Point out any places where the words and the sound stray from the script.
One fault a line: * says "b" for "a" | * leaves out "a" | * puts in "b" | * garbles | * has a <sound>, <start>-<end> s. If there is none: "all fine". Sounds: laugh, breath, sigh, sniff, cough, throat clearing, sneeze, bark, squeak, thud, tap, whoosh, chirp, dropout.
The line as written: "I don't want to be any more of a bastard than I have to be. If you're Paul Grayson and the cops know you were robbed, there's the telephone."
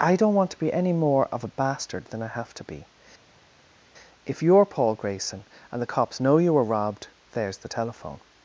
all fine